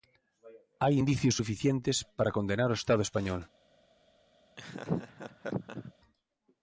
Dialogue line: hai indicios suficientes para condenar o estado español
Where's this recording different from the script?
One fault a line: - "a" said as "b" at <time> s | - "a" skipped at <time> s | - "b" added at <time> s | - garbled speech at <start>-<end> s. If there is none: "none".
none